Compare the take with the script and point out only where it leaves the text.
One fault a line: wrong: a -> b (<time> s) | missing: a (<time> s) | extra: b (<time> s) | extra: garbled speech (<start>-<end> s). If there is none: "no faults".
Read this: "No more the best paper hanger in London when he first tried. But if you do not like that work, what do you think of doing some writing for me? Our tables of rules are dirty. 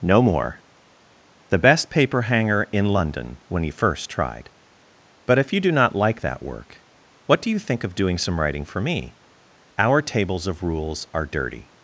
no faults